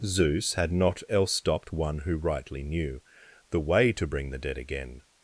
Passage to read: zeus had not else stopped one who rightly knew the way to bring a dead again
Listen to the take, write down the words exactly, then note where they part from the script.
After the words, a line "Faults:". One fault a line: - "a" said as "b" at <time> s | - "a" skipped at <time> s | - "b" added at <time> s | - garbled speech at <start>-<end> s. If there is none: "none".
zeus had not else stopped one who rightly knew the way to bring the dead again
Faults:
- "a" said as "the" at 4.3 s